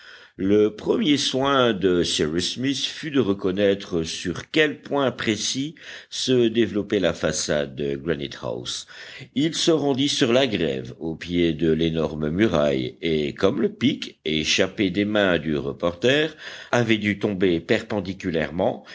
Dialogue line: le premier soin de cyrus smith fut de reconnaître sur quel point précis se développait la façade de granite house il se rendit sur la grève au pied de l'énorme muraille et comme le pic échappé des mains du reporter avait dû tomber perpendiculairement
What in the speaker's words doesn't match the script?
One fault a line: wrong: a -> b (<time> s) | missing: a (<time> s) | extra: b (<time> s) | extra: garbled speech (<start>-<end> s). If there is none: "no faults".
no faults